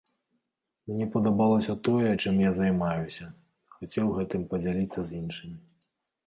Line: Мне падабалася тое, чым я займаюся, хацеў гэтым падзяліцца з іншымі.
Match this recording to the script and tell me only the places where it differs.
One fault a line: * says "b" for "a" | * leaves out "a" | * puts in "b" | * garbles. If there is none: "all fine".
all fine